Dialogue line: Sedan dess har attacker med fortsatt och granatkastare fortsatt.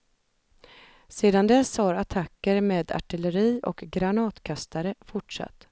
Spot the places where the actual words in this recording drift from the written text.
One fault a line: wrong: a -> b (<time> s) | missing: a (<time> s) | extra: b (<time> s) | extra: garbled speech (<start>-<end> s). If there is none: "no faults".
wrong: fortsatt -> artilleri (2.9 s)